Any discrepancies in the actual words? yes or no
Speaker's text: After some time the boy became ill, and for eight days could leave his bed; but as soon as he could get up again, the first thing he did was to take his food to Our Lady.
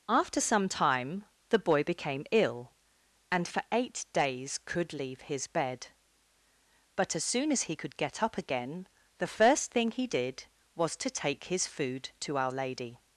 no